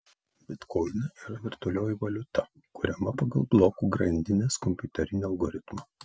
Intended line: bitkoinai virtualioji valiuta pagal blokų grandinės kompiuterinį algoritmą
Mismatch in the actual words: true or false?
true